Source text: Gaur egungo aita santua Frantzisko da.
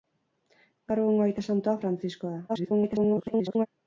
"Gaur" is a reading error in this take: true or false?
false